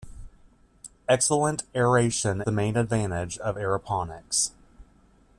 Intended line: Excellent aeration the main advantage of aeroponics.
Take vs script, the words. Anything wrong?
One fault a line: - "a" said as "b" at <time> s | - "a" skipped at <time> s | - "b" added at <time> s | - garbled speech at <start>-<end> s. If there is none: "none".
none